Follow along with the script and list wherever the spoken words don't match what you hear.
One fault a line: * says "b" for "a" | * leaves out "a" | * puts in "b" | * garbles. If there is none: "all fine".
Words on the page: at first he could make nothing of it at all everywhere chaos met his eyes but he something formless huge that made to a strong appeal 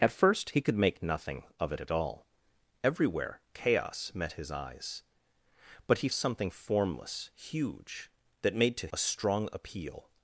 all fine